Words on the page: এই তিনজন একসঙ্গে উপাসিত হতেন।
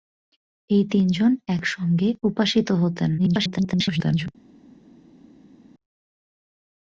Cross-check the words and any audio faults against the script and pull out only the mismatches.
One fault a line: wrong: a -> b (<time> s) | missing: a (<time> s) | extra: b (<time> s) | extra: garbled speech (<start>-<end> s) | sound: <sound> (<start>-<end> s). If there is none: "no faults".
extra: garbled speech (3.2-4.3 s)